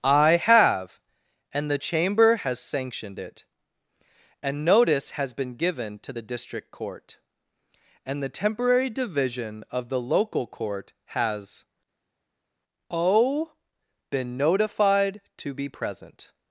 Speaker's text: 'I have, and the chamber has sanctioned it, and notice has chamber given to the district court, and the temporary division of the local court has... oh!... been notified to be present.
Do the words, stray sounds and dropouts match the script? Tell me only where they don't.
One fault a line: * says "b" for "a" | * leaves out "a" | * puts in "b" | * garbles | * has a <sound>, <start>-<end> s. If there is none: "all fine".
* says "been" for "chamber"